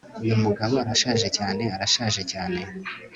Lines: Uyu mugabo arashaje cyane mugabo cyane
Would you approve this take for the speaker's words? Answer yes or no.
no